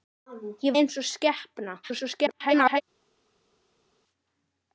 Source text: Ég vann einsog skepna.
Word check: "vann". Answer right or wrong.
wrong